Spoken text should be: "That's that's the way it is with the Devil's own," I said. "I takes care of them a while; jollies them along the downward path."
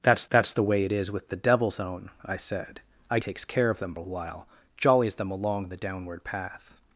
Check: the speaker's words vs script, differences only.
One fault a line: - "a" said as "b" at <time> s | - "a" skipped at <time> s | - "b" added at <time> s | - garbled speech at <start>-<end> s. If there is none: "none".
none